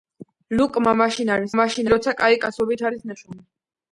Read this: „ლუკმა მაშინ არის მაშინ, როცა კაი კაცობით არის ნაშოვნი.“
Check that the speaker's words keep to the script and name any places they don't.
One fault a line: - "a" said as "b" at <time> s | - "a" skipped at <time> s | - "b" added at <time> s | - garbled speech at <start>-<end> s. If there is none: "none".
none